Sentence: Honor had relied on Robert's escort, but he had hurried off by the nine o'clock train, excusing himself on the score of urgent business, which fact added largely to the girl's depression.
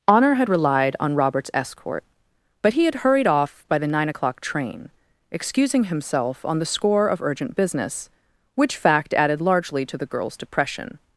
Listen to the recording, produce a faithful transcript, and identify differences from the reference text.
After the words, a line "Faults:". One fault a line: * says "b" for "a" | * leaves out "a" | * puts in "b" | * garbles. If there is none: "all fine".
Honor had relied on Robert's escort, but he had hurried off by the nine o'clock train, excusing himself on the score of urgent business, which fact added largely to the girl's depression.
Faults:
all fine